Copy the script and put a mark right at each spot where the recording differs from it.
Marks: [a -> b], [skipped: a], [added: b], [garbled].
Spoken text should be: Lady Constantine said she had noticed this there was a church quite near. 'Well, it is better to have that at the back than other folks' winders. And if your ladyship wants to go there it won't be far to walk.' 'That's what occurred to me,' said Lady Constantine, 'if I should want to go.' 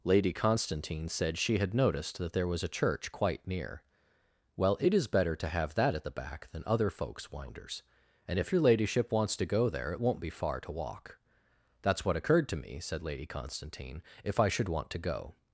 Lady Constantine said she had noticed [this -> that] there was a church quite near. 'Well, it is better to have that at the back than other folks' winders. And if your ladyship wants to go there it won't be far to walk.' 'That's what occurred to me,' said Lady Constantine, 'if I should want to go.'